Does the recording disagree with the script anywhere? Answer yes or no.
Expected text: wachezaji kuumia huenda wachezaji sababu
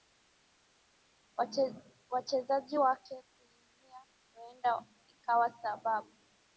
yes